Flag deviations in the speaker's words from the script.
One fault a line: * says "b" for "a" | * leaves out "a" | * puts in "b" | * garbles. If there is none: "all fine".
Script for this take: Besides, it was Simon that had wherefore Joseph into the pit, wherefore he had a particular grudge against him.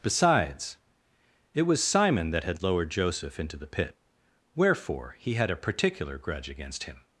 * says "lowered" for "wherefore"